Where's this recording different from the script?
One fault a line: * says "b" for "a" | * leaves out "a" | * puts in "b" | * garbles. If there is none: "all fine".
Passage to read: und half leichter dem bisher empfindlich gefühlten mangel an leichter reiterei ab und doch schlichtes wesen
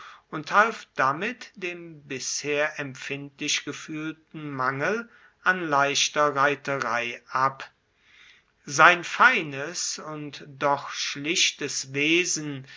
* says "damit" for "leichter"
* puts in "sein feines"